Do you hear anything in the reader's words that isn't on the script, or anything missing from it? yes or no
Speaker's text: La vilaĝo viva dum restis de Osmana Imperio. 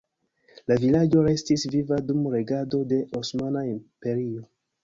yes